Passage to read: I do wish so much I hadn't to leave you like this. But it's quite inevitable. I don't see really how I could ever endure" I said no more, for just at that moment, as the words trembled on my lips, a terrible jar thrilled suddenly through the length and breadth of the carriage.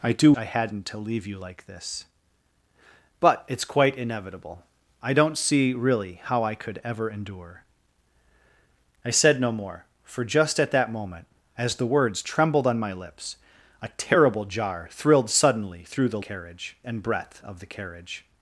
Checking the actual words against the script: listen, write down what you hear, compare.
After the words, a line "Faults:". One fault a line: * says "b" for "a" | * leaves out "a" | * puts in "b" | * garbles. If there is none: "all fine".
I do I hadn't to leave you like this. But it's quite inevitable. I don't see really how I could ever endure" I said no more, for just at that moment, as the words trembled on my lips, a terrible jar thrilled suddenly through the carriage and breadth of the carriage.
Faults:
* leaves out "wish so much"
* says "carriage" for "length"